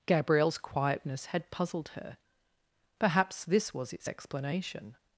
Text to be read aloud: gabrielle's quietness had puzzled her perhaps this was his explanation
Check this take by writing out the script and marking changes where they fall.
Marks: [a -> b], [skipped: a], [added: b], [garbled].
gabrielle's quietness had puzzled her perhaps this was [his -> its] explanation